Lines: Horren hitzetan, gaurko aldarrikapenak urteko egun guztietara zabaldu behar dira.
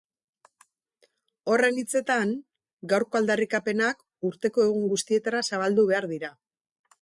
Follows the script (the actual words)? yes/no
yes